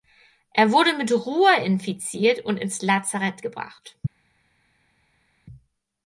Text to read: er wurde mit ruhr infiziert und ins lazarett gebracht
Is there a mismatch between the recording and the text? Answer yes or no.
no